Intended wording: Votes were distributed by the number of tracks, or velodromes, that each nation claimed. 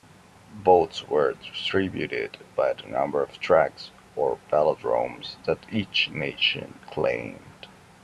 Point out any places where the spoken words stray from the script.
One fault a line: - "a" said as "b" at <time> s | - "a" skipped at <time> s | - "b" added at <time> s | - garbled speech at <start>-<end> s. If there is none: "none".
none